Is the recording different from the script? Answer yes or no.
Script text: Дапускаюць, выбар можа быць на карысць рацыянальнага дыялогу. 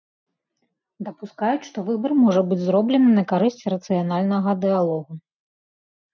yes